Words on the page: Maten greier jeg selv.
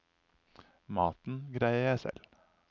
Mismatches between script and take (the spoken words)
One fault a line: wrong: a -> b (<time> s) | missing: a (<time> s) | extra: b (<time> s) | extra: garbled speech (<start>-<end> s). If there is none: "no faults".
no faults